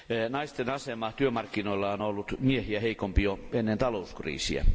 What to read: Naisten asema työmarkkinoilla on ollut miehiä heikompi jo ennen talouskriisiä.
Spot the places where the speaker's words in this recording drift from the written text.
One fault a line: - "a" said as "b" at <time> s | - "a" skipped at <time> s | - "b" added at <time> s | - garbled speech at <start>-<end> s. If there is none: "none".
none